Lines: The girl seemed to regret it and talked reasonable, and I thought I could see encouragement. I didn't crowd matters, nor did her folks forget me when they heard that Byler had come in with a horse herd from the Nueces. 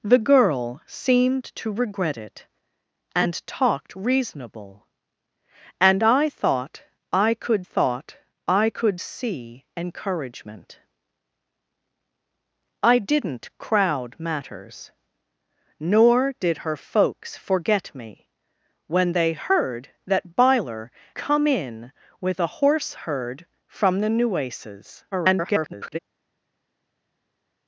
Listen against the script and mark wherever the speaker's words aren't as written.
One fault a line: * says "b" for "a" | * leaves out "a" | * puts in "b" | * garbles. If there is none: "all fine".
* puts in "thought I could"
* leaves out "had"
* garbles